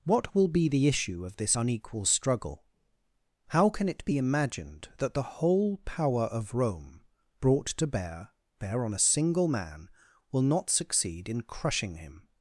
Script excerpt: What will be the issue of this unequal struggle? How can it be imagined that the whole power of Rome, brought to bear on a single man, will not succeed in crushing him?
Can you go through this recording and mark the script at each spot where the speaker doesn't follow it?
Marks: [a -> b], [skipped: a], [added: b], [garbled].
What will be the issue of this unequal struggle? How can it be imagined that the whole power of Rome, brought to bear [added: bear] on a single man, will not succeed in crushing him?